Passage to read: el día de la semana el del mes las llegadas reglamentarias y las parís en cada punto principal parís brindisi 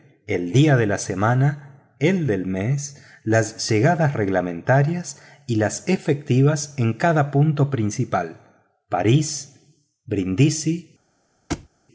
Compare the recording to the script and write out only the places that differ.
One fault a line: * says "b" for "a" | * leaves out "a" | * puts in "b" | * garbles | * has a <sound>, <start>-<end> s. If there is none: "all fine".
* says "efectivas" for "parís"
* has a thud, 11.5-11.7 s